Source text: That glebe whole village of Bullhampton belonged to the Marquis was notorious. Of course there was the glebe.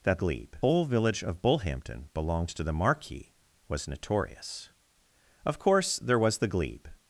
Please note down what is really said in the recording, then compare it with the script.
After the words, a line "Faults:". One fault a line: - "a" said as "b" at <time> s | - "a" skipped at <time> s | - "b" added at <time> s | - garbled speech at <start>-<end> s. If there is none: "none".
That glebe whole village of Bullhampton belonged to the Marquis was notorious. Of course there was the glebe.
Faults:
none